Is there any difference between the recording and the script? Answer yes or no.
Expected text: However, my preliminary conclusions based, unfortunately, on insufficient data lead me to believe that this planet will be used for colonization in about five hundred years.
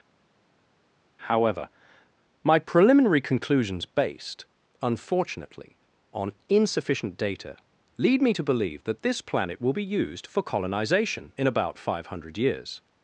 no